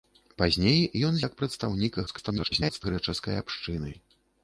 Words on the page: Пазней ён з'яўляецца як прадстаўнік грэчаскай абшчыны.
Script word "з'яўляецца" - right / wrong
wrong